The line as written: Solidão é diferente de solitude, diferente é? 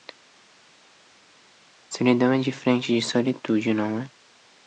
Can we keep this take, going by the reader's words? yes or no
no